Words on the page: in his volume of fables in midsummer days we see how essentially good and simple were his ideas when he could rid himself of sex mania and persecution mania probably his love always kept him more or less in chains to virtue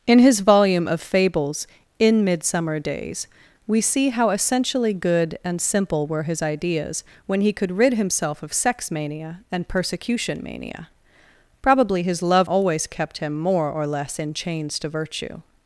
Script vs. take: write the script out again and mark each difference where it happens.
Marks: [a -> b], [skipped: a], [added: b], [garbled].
in his volume of fables in midsummer days we see how essentially good and simple were his ideas when he could rid himself of sex mania and persecution mania probably his love always kept him more or less in chains to virtue